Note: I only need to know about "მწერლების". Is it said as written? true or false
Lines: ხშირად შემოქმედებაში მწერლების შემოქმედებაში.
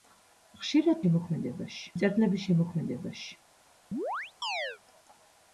true